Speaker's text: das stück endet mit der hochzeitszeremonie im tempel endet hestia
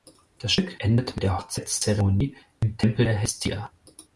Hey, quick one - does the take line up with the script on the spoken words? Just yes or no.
no